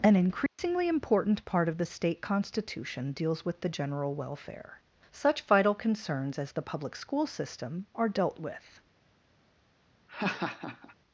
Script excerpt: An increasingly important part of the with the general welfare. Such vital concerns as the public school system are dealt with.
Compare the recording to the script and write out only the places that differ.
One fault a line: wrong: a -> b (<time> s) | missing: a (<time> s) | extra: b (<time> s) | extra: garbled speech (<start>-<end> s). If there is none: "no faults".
extra: state constitution deals (1.9 s)